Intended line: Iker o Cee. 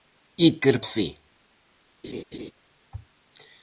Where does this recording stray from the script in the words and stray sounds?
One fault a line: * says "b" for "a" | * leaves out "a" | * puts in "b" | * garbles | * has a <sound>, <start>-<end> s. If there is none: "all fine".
* has a laugh, 2.0-2.5 s